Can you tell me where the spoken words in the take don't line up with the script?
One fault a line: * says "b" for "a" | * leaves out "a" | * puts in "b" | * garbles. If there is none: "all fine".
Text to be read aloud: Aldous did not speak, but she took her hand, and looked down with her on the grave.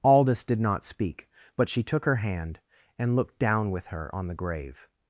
all fine